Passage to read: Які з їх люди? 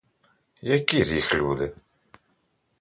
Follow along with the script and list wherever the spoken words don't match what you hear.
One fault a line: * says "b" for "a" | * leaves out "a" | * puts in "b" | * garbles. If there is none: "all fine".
all fine